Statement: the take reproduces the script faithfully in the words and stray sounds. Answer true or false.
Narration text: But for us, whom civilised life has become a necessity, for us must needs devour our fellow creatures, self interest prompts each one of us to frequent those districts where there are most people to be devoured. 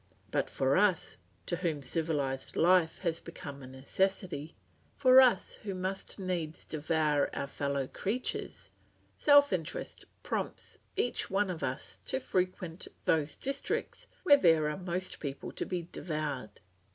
false